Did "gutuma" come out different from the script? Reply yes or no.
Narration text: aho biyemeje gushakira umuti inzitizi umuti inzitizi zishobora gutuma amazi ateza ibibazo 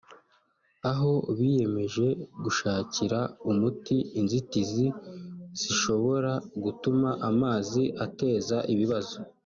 no